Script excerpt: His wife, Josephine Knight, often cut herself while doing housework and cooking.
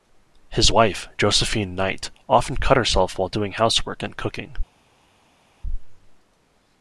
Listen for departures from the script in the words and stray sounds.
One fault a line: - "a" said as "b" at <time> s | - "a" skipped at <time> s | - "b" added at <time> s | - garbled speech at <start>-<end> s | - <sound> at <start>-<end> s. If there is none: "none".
none